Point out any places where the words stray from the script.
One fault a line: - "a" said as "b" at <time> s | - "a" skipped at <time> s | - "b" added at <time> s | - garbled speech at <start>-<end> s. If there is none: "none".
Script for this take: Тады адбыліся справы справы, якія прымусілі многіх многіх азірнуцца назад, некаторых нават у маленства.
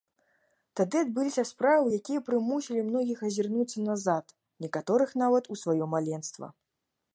- "справы" skipped at 1.9 s
- "многіх" skipped at 3.2 s
- "сваё" added at 5.6 s